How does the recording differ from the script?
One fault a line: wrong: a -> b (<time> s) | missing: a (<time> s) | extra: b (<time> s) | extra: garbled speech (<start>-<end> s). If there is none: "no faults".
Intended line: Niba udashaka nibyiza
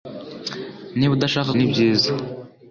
no faults